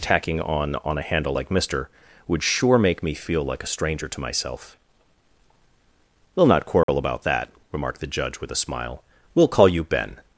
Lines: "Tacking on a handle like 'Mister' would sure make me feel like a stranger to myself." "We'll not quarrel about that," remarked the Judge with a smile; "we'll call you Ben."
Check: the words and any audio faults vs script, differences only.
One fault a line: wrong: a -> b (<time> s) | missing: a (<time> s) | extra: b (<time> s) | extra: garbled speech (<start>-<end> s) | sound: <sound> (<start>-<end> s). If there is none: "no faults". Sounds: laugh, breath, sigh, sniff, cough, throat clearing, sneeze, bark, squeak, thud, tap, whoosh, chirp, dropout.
extra: on (0.8 s)
sound: dropout (6.8-6.9 s)